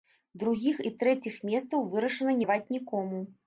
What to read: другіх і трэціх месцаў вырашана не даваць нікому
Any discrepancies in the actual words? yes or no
yes